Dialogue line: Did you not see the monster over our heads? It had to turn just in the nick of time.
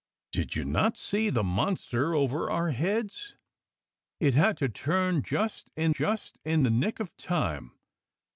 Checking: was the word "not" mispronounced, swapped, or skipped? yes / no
no